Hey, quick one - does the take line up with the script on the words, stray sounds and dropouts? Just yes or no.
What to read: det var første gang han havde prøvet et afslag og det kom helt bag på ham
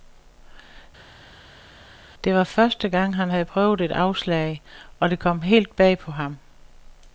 yes